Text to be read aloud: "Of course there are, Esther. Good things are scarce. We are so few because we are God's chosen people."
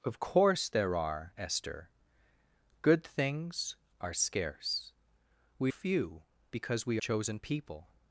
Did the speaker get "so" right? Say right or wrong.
wrong